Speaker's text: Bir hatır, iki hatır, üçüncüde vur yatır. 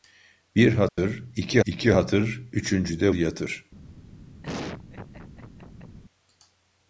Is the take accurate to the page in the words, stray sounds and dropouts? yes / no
no